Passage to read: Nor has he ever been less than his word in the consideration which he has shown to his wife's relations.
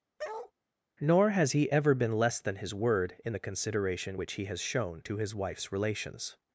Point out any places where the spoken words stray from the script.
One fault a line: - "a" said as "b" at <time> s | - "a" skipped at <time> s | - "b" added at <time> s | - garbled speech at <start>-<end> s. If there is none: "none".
none